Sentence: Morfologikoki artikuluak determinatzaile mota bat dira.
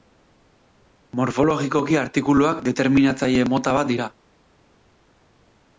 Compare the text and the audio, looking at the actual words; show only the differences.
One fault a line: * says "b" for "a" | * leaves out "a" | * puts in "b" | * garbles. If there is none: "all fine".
all fine